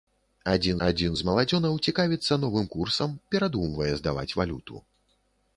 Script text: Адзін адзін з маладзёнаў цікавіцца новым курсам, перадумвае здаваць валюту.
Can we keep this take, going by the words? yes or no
yes